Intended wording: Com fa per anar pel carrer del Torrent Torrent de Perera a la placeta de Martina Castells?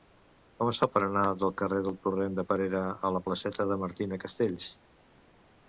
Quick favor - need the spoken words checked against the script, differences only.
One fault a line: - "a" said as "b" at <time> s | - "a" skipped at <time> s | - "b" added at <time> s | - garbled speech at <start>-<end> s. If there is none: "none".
- "es" added at 0.7 s
- "pel" said as "del" at 1.4 s
- "Torrent" skipped at 2.4 s